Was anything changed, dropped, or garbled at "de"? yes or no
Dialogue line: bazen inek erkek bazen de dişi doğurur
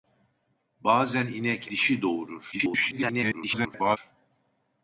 yes